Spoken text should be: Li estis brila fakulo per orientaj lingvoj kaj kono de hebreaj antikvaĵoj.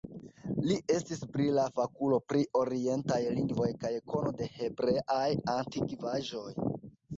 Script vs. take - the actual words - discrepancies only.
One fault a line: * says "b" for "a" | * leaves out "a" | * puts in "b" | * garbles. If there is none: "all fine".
* says "pri" for "per"